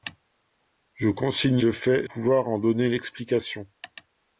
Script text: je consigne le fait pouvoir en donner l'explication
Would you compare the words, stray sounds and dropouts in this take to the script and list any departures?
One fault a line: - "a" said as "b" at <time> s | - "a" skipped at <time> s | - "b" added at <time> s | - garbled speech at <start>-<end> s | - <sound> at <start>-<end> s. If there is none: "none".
none